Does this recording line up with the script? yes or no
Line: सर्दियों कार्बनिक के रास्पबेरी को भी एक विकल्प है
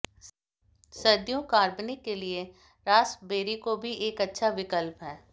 no